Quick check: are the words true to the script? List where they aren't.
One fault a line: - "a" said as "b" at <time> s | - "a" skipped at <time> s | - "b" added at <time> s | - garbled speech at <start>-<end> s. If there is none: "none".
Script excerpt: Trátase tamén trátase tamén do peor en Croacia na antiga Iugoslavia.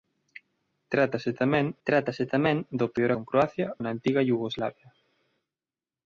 none